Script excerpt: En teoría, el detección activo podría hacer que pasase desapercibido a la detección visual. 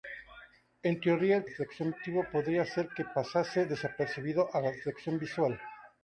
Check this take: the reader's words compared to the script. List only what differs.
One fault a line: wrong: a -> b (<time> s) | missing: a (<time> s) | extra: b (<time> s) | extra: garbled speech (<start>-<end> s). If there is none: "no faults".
no faults